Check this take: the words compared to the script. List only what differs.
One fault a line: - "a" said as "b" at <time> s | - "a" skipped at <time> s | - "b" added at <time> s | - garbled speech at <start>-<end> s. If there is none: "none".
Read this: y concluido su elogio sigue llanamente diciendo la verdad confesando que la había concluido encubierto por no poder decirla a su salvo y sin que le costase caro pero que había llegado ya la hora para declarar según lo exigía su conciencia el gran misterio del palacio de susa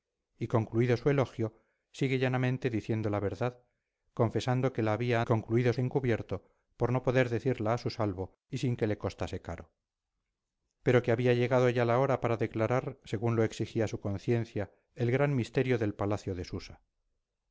none